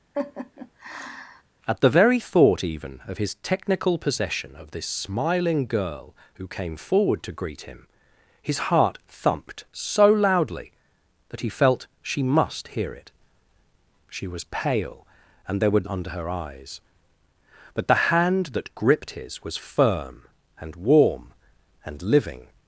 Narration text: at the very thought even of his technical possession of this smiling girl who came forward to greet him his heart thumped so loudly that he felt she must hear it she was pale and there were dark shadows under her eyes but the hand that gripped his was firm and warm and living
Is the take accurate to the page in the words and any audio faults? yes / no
no